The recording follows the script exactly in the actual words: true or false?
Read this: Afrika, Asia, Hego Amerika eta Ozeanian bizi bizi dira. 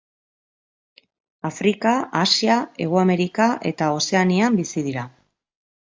false